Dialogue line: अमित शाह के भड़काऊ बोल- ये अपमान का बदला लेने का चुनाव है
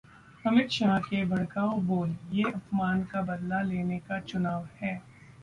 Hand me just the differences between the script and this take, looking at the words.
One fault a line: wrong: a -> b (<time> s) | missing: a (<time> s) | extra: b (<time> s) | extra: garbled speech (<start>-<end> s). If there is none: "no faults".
no faults